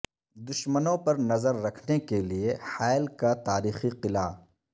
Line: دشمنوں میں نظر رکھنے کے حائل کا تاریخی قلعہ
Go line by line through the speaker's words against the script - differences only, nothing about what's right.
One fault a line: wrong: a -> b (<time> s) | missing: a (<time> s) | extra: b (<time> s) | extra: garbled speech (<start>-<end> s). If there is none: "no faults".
wrong: میں -> پر (1.0 s)
extra: لیے (2.2 s)